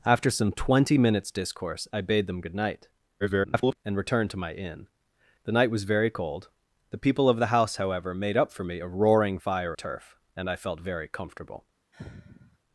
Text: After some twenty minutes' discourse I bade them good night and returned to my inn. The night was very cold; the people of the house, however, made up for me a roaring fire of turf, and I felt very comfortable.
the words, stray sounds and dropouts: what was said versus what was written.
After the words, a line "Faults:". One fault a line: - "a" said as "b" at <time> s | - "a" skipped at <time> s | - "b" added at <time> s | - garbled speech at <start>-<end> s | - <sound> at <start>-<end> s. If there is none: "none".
After some twenty minutes' discourse I bade them good night [garbled] and returned to my inn. The night was very cold; the people of the house, however, made up for me a roaring fire turf, and I felt very comfortable.
Faults:
- garbled speech at 3.2-3.8 s
- "of" skipped at 9.7 s
- sigh at 11.9-12.6 s